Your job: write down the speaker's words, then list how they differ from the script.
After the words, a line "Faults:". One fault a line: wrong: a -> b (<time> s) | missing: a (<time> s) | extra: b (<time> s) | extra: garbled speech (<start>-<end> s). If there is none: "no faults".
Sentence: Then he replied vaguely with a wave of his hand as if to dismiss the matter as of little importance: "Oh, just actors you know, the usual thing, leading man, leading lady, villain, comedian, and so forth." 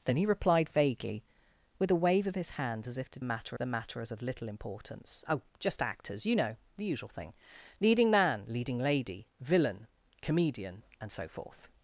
Then he replied vaguely with a wave of his hand as if to matter the matter as of little importance: "Oh, just actors you know, the usual thing, leading man, leading lady, villain, comedian, and so forth."
Faults:
wrong: dismiss -> matter (3.2 s)